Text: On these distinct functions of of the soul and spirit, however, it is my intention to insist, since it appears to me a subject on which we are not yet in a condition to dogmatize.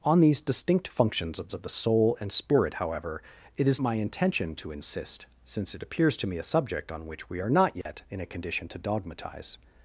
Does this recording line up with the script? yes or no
yes